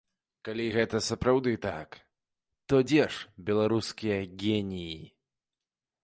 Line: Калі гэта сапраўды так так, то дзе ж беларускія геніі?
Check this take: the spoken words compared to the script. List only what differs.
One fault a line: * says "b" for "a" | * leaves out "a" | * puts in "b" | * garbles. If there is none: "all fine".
* leaves out "так"